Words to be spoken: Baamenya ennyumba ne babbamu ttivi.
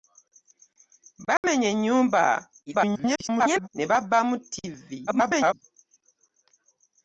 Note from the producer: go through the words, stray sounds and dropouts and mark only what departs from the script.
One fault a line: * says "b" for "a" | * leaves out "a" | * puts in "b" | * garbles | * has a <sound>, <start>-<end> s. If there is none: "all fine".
* has a dropout, 1.4-1.4 s
* garbles
* garbles